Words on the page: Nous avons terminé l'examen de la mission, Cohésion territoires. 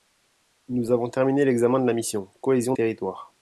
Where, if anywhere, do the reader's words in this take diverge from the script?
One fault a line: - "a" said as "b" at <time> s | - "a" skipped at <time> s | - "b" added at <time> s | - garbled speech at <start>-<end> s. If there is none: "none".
none